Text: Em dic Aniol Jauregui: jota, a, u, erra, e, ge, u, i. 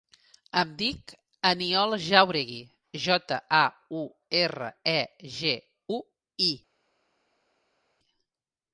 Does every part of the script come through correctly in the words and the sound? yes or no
yes